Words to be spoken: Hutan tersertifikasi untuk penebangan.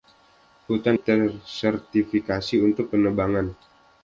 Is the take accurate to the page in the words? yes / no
yes